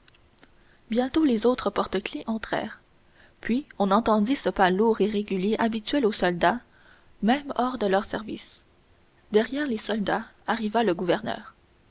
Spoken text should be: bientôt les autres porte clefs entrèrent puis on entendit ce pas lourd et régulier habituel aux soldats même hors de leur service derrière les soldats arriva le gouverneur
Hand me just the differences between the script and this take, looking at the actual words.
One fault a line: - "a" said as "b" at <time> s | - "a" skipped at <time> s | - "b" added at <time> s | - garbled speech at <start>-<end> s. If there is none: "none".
none